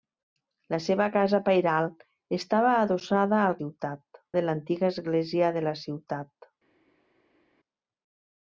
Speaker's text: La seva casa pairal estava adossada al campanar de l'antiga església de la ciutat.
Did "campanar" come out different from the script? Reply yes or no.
yes